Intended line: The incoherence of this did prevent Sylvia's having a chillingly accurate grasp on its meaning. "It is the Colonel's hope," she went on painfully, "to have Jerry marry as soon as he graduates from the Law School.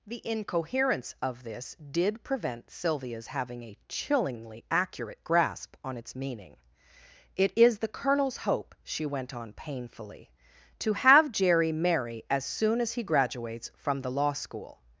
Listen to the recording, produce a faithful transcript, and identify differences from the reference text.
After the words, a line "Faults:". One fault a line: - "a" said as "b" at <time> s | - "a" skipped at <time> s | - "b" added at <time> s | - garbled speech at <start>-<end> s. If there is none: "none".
The incoherence of this did prevent Sylvia's having a chillingly accurate grasp on its meaning. "It is the Colonel's hope," she went on painfully, "to have Jerry marry as soon as he graduates from the Law School.
Faults:
none